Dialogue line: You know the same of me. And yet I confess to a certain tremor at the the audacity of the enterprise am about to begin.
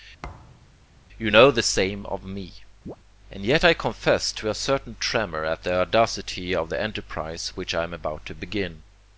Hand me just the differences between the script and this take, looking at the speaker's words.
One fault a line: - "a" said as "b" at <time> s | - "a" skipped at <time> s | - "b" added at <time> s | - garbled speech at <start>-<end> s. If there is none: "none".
- "the" skipped at 5.7 s
- "which I" added at 7.5 s